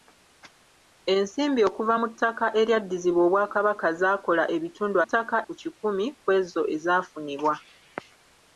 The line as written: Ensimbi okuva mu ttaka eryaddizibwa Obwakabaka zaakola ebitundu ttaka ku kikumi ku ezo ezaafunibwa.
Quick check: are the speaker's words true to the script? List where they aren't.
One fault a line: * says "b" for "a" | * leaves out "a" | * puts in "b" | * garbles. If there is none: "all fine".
all fine